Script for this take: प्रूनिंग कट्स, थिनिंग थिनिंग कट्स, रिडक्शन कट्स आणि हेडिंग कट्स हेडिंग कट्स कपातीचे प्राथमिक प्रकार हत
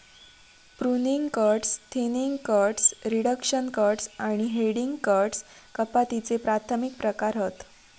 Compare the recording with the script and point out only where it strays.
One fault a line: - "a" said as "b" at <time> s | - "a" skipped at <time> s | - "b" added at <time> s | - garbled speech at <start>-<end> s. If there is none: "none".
- "थिनिंग" skipped at 2.4 s
- "हेडिंग कट्स" skipped at 5.4 s